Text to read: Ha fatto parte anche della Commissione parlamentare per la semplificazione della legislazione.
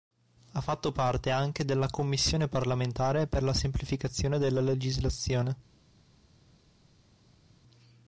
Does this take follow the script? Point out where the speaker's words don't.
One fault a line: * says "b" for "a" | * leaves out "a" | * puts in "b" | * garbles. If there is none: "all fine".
all fine